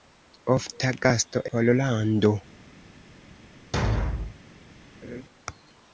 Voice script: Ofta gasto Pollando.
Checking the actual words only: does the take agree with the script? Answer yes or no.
yes